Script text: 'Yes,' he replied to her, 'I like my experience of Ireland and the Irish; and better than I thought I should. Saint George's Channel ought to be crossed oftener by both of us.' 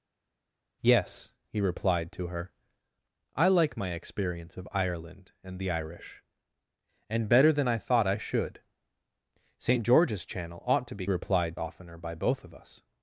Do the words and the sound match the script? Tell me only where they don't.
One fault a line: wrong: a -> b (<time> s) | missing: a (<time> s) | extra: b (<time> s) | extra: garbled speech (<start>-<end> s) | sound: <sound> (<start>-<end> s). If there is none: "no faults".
wrong: crossed -> replied (11.1 s)